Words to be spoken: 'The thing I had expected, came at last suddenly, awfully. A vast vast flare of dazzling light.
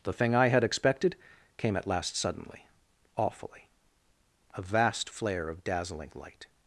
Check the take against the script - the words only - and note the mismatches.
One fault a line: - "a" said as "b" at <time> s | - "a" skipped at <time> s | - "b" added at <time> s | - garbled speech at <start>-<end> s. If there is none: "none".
- "vast" skipped at 5.1 s